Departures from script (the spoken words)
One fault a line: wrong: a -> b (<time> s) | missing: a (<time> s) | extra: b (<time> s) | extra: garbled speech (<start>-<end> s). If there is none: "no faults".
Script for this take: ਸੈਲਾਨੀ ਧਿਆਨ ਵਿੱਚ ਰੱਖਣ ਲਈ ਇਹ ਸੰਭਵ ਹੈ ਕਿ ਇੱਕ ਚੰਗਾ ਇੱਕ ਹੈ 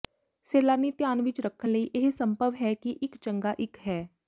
no faults